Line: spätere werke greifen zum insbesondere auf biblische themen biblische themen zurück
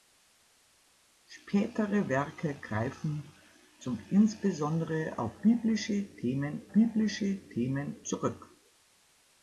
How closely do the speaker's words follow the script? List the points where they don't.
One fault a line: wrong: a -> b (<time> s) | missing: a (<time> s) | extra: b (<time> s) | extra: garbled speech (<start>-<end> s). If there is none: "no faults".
no faults